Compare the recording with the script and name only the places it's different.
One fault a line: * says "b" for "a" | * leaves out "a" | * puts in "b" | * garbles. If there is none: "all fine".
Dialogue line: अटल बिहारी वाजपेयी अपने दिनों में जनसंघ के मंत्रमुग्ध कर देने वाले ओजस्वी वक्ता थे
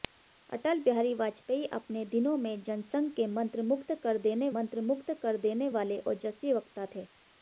* puts in "मंत्रमुग्ध कर देने"